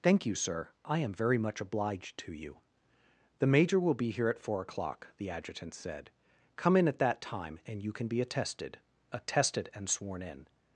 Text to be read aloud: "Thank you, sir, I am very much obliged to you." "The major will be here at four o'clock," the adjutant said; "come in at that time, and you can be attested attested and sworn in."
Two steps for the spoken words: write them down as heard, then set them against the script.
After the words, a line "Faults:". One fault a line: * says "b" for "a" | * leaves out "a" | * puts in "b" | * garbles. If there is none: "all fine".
"Thank you, sir, I am very much obliged to you." "The major will be here at four o'clock," the adjutant said; "come in at that time, and you can be attested attested and sworn in."
Faults:
all fine